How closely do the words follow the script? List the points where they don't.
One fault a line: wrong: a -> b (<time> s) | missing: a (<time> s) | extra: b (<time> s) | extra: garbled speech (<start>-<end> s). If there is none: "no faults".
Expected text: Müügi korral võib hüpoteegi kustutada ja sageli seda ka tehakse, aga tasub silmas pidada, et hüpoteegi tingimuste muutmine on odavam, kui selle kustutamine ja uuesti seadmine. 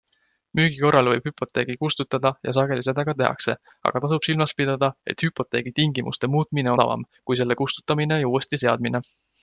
missing: on (6.7 s)